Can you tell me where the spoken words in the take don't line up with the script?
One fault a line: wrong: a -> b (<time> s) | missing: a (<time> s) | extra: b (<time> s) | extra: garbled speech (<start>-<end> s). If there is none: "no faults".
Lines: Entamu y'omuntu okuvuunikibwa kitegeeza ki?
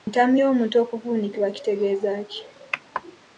no faults